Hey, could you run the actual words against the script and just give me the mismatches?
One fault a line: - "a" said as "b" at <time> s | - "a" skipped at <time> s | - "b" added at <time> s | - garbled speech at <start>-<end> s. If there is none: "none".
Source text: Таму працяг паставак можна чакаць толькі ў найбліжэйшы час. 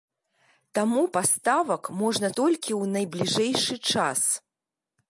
- "працяг" skipped at 1.0 s
- "чакаць" skipped at 2.3 s